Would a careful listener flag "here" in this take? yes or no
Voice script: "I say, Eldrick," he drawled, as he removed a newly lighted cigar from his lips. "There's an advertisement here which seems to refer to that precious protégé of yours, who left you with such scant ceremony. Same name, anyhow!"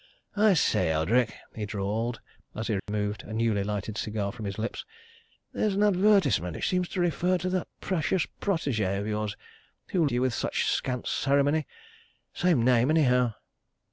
yes